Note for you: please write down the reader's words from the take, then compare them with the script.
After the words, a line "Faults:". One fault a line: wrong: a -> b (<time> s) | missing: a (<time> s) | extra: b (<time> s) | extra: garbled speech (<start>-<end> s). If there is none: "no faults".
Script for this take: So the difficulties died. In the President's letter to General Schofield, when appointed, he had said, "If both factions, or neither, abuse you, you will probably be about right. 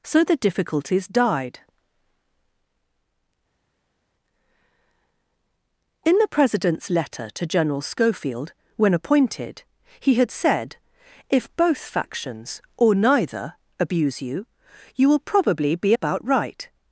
So the difficulties died. In the President's letter to General Schofield, when appointed, he had said, "If both factions, or neither, abuse you, you will probably be about right.
Faults:
no faults